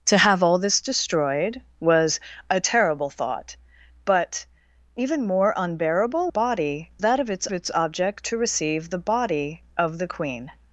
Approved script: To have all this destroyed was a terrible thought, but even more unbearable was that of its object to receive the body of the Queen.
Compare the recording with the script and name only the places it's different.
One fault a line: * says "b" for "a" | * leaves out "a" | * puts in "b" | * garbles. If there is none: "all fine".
* says "body" for "was"
* puts in "its"